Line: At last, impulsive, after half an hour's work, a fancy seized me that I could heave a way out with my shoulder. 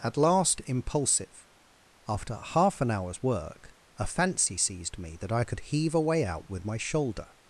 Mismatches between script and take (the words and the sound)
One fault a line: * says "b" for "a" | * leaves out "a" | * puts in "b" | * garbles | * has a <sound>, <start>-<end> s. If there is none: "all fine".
all fine